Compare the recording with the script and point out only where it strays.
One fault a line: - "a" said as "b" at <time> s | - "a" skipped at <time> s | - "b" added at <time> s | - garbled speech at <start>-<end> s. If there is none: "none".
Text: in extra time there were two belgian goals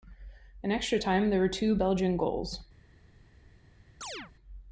none